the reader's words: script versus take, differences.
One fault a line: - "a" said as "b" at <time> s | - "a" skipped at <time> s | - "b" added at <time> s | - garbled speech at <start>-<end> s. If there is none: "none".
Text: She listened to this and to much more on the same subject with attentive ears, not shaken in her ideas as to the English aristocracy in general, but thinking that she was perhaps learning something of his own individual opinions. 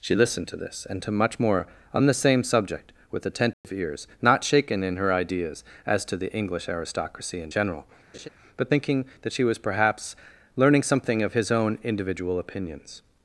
none